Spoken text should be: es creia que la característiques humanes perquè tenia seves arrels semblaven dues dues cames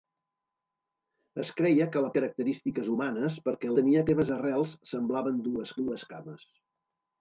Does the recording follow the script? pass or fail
pass